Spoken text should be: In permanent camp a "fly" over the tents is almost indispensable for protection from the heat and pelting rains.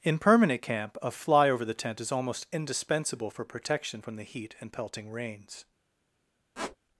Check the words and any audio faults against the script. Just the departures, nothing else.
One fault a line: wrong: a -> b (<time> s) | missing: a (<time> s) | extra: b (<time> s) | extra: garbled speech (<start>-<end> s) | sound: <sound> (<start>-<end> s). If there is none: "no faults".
wrong: tents -> tent (1.8 s)
sound: squeak (6.5-6.8 s)